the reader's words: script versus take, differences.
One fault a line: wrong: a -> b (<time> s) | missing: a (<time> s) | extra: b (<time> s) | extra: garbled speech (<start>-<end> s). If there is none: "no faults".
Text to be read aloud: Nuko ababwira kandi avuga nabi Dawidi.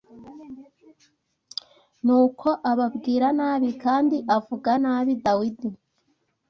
extra: nabi (3.4 s)